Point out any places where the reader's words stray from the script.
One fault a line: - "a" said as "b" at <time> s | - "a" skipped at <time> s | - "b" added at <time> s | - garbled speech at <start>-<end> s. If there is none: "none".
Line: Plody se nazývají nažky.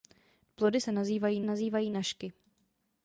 - "nazývají" added at 1.4 s